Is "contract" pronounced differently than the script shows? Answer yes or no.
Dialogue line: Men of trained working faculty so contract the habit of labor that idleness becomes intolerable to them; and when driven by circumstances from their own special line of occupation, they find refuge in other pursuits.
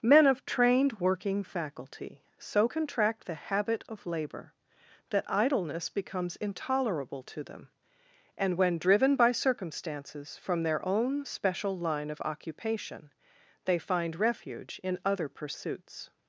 no